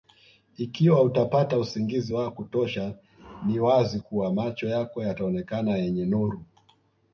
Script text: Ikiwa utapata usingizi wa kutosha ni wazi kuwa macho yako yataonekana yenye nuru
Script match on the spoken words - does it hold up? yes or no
yes